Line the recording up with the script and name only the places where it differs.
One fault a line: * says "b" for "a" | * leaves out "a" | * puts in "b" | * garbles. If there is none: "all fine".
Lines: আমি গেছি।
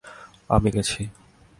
all fine